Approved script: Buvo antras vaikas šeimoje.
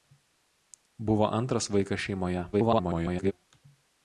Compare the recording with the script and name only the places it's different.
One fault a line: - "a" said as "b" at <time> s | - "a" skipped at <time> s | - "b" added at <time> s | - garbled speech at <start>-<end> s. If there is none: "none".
- garbled speech at 2.5-3.3 s